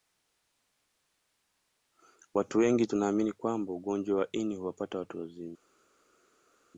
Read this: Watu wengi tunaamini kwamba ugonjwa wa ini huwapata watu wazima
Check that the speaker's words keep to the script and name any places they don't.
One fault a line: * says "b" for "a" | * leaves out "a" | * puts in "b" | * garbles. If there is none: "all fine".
all fine